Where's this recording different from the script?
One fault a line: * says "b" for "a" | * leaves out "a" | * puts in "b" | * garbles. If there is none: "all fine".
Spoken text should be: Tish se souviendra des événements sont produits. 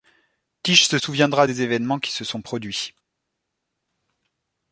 * puts in "qui se"